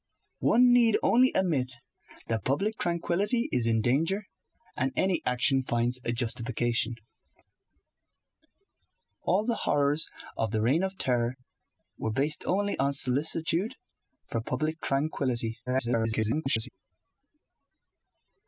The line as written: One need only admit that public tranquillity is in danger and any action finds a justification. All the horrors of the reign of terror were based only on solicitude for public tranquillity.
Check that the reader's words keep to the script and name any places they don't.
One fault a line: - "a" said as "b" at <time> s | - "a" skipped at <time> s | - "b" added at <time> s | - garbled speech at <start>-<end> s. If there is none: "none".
- garbled speech at 15.7-16.7 s